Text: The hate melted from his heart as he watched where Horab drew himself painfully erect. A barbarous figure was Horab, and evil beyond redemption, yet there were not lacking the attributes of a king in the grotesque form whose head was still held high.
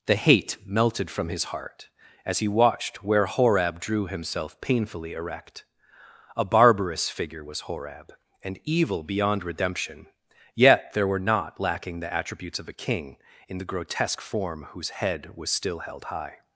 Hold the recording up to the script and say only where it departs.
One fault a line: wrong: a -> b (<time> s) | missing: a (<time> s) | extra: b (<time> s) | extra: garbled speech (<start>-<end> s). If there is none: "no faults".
no faults